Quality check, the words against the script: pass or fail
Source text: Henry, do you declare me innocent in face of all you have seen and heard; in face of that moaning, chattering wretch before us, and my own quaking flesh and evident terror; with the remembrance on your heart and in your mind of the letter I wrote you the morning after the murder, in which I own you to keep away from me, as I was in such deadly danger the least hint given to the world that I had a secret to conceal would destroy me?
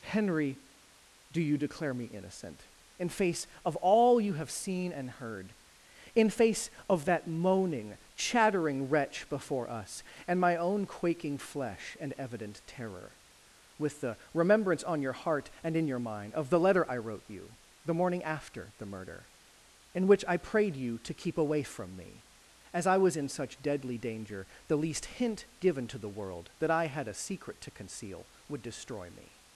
fail